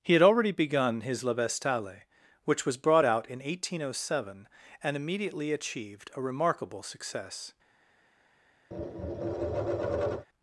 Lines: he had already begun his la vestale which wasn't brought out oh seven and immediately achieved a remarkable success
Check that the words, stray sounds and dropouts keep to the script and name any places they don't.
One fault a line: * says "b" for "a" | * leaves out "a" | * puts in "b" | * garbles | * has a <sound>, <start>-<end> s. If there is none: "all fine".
* says "was" for "wasn't"
* puts in "in eighteen"
* has a tap, 8.7-10.3 s